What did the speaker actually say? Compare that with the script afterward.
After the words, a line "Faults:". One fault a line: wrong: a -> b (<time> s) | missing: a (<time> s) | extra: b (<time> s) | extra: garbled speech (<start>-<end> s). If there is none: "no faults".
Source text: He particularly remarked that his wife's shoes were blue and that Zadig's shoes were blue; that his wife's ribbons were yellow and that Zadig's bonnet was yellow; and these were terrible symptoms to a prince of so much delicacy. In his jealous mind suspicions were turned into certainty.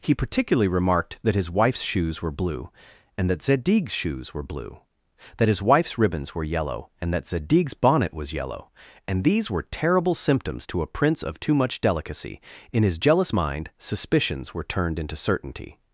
He particularly remarked that his wife's shoes were blue and that Zadig's shoes were blue; that his wife's ribbons were yellow and that Zadig's bonnet was yellow; and these were terrible symptoms to a prince of too much delicacy. In his jealous mind suspicions were turned into certainty.
Faults:
wrong: so -> too (11.4 s)